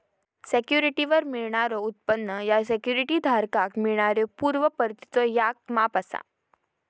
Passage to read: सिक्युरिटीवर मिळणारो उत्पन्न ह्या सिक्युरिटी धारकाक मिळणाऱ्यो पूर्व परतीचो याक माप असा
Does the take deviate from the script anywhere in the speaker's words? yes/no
no